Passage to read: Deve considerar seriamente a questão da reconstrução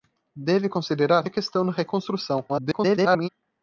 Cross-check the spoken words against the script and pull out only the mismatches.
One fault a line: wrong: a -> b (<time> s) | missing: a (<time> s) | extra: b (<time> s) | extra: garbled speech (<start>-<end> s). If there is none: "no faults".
missing: seriamente (1.3 s)
extra: garbled speech (2.5-3.3 s)